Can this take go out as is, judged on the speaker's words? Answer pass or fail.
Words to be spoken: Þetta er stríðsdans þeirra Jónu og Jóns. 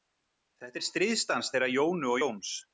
pass